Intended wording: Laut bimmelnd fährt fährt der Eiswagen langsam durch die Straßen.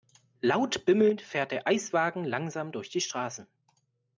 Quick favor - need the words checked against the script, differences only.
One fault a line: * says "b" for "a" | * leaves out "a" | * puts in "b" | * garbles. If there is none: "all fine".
* leaves out "fährt"